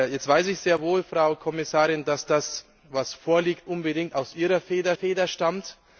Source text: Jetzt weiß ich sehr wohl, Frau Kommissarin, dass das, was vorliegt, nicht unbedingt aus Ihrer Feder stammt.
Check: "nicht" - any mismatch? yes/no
yes